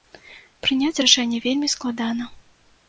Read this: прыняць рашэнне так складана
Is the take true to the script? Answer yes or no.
no